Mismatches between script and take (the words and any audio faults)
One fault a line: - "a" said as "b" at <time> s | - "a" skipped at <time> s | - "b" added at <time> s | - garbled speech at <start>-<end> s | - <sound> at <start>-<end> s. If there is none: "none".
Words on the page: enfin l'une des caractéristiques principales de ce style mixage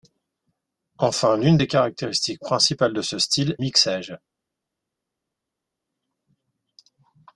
none